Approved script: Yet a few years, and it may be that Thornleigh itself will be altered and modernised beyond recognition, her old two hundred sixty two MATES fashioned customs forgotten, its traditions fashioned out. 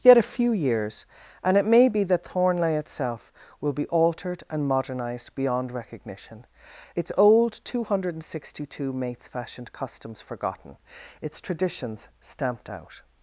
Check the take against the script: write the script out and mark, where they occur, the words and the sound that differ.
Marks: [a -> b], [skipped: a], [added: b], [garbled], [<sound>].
Yet a few years, and it may be that Thornleigh itself will be altered and modernised beyond recognition, [her -> its] old two hundred sixty two MATES fashioned customs forgotten, its traditions [fashioned -> stamped] out.